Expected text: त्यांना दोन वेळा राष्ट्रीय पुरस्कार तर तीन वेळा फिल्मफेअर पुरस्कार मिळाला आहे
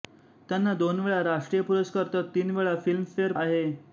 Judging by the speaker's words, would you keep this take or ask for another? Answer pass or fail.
fail